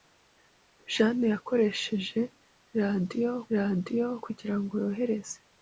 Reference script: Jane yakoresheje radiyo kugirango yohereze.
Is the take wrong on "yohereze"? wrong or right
right